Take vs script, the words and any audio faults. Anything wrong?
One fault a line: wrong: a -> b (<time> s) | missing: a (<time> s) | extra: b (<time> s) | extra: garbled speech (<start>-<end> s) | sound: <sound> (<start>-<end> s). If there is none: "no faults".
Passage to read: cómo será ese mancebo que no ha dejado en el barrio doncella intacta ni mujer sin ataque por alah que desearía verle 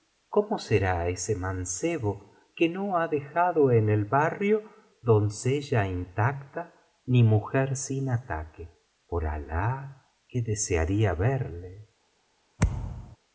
sound: thud (12.6-13.2 s)